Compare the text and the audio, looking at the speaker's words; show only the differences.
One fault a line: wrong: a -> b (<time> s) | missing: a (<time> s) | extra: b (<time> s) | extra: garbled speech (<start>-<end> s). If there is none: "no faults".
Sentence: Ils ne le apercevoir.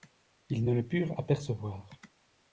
extra: purent (0.8 s)